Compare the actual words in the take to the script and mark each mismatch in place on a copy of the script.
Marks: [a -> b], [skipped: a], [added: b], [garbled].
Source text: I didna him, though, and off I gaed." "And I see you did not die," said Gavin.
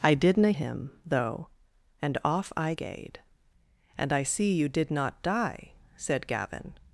I didna him, though, and off I gaed." "And I see you did not die," said Gavin.